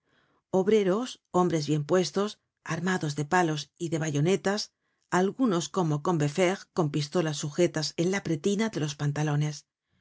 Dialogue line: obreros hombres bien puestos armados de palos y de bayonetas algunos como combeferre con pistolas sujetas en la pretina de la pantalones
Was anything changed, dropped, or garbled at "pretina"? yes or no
no